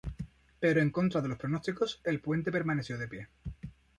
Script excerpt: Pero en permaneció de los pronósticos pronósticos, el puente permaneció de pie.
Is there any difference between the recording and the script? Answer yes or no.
yes